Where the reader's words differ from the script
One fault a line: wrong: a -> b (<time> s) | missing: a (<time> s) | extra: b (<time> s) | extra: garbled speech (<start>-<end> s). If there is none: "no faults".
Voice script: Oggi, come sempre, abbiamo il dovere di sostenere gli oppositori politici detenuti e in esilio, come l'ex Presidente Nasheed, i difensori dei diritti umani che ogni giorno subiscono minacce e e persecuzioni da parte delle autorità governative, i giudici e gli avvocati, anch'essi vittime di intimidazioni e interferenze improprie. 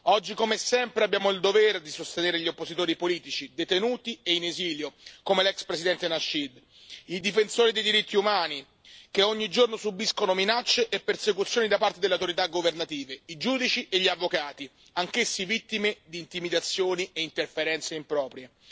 missing: e (11.0 s)